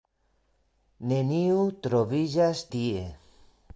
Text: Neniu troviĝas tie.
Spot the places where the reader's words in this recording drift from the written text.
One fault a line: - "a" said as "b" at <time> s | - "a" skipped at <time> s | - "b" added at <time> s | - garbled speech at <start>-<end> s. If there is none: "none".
none